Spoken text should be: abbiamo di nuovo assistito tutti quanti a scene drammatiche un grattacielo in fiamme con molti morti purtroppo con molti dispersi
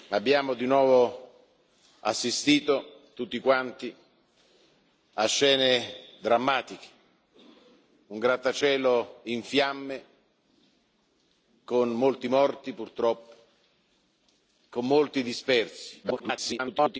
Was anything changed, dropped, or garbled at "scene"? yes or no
no